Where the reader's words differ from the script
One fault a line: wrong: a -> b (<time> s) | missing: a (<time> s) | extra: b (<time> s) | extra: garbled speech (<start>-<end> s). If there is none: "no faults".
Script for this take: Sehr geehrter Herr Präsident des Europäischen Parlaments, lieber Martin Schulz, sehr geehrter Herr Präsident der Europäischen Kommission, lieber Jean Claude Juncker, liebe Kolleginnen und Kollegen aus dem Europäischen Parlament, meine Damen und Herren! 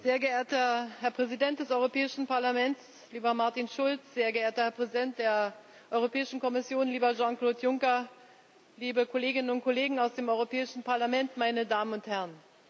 no faults